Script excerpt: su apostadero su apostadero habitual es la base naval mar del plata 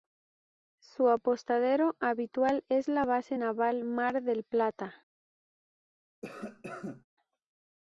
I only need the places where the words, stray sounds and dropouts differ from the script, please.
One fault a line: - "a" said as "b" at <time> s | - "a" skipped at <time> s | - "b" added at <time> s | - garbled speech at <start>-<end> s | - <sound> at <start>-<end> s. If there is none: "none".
- "su apostadero" skipped at 1.9 s
- cough at 6.2-7.0 s